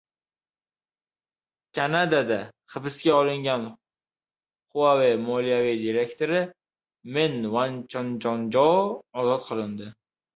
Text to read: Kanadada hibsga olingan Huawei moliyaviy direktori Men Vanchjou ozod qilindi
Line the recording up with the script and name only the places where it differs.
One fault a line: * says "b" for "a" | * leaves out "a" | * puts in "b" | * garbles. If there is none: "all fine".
all fine